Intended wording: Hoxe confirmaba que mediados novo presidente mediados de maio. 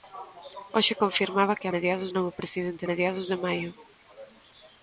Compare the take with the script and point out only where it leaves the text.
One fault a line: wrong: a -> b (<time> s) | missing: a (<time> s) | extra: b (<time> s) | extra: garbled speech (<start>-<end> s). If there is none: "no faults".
no faults